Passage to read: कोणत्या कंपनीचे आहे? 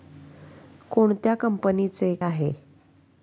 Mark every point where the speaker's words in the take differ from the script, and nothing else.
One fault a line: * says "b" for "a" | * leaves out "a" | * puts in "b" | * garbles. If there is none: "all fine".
all fine